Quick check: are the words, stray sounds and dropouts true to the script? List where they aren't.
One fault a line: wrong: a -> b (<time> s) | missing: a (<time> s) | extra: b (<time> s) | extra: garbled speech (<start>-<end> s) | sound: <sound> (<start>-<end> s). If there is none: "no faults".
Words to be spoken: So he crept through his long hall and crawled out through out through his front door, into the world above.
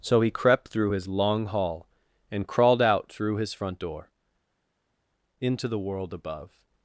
missing: out through (3.4 s)